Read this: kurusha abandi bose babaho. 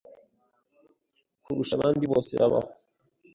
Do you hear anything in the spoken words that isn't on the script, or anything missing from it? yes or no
no